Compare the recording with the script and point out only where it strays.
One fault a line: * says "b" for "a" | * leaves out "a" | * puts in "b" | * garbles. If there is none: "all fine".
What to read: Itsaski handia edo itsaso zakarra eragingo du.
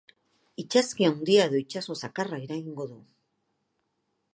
all fine